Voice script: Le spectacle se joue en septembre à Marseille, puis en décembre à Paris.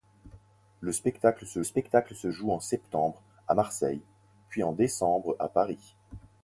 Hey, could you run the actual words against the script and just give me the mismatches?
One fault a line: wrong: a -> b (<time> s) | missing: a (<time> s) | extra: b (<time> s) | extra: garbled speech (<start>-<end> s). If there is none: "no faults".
extra: spectacle se (1.6 s)